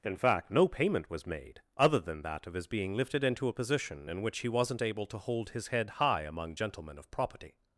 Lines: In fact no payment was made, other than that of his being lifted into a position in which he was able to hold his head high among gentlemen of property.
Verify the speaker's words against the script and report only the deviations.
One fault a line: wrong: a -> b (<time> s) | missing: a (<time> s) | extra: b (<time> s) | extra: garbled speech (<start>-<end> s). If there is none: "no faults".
wrong: was -> wasn't (4.5 s)